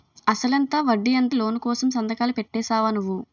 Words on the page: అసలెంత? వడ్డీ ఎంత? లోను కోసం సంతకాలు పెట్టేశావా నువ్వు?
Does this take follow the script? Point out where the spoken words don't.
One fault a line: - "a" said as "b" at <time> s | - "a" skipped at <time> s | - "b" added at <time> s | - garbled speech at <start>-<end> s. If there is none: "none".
none